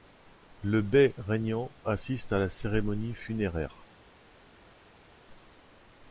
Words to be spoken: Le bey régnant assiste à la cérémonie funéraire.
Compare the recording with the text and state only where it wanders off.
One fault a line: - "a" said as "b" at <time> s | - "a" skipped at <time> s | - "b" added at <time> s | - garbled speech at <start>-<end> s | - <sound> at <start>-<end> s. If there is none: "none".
none